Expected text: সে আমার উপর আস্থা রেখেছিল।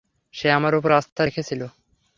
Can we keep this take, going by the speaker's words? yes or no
yes